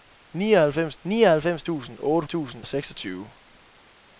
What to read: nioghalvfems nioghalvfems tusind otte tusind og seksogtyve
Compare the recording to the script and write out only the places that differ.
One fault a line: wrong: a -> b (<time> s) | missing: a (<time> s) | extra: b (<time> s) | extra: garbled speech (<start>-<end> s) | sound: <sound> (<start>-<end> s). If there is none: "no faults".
no faults